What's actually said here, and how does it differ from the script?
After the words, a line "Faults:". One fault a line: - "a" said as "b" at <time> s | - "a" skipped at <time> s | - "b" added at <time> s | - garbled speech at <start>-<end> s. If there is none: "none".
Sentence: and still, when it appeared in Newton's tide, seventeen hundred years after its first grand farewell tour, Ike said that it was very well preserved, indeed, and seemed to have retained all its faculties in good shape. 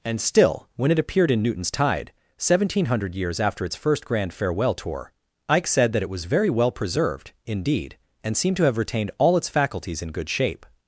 and still, when it appeared in Newton's tide, seventeen hundred years after its first grand farewell tour, Ike said that it was very well preserved, indeed, and seemed to have retained all its faculties in good shape.
Faults:
none